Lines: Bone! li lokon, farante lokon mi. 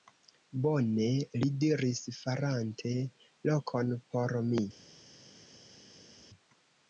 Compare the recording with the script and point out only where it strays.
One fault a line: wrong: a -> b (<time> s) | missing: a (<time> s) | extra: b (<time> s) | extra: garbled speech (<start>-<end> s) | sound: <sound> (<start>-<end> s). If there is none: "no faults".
wrong: lokon -> diris (1.6 s)
extra: por (4.1 s)